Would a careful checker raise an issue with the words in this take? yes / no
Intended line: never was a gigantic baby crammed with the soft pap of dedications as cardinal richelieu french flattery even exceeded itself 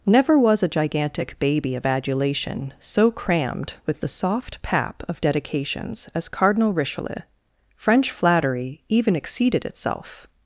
yes